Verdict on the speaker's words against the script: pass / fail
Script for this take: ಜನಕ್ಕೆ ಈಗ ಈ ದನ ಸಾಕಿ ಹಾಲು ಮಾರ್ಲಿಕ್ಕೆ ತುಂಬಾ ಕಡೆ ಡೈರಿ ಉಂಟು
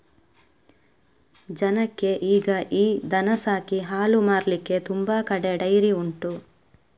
pass